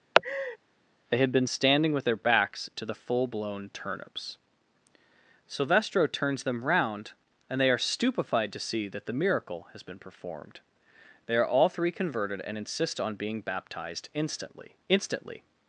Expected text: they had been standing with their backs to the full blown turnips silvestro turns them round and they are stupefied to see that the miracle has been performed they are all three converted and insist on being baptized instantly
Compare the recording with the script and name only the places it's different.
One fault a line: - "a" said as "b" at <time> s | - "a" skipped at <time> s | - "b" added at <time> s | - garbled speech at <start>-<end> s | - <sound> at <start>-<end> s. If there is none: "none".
- laugh at 0.1-0.6 s
- "instantly" added at 14.9 s